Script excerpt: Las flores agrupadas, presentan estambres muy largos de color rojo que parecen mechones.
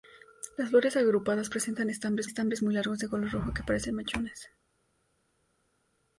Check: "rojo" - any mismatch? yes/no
no